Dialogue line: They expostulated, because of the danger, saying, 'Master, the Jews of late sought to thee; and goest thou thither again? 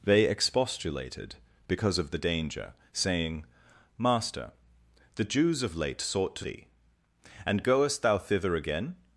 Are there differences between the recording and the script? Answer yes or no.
no